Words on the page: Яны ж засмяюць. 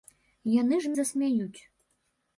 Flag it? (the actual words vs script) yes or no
no